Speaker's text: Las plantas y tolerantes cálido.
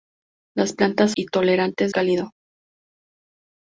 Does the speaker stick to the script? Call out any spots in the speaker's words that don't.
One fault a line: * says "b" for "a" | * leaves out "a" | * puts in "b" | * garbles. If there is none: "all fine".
all fine